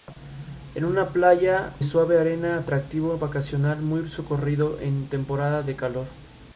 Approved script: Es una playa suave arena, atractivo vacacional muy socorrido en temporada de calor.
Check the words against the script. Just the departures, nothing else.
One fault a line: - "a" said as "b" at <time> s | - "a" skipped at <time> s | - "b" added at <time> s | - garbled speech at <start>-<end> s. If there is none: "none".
none